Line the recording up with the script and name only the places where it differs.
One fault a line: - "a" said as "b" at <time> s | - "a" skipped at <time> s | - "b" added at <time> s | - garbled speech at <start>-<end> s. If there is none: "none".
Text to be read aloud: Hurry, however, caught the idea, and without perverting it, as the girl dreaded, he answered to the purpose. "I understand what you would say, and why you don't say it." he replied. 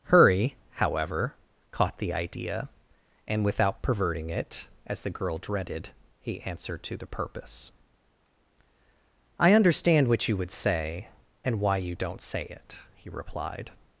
none